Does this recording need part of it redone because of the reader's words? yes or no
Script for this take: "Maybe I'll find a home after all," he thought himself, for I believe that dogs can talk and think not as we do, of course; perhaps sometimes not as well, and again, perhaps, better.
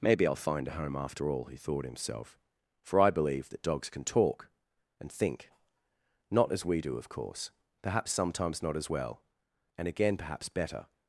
no